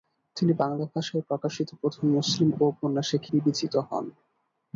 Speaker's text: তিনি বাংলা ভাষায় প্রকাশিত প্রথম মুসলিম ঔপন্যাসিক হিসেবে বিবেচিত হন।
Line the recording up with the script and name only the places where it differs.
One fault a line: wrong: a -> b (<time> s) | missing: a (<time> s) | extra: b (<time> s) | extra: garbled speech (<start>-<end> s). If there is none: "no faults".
missing: হিসেবে (3.2 s)